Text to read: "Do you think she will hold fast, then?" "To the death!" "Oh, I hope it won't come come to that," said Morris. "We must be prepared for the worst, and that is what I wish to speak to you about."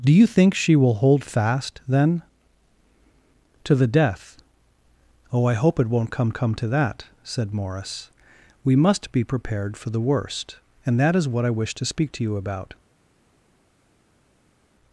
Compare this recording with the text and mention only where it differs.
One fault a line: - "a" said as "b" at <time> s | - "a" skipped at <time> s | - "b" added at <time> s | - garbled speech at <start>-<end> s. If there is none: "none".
none